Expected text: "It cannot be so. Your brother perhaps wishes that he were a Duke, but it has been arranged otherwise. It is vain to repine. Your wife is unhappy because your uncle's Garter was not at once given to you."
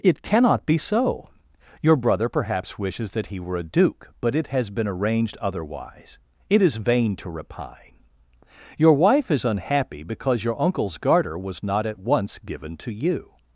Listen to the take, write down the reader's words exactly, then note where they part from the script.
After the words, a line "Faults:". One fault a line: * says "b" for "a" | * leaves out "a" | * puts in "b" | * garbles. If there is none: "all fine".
"It cannot be so. Your brother perhaps wishes that he were a Duke, but it has been arranged otherwise. It is vain to repine. Your wife is unhappy because your uncle's Garter was not at once given to you."
Faults:
all fine